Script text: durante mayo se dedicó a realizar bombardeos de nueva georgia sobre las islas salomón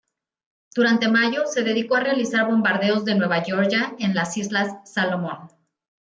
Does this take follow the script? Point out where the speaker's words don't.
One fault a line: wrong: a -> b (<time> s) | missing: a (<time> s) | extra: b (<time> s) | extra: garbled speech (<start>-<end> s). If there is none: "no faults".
wrong: sobre -> en (4.0 s)